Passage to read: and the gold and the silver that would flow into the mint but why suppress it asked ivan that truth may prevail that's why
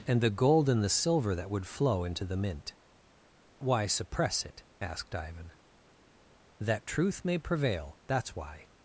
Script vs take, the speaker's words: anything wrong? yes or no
yes